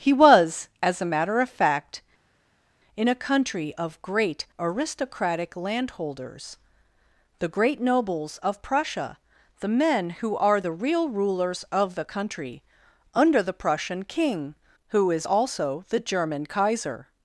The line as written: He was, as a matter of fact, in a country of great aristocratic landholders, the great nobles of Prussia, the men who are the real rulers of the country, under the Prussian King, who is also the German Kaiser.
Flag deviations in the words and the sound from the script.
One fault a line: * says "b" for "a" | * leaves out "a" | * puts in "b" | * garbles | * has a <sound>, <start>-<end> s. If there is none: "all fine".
all fine